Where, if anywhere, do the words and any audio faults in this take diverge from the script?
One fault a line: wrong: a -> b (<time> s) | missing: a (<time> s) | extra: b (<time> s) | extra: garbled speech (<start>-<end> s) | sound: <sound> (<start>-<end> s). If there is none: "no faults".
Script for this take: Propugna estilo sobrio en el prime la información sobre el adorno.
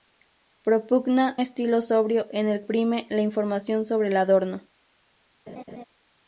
sound: laugh (5.5-5.8 s)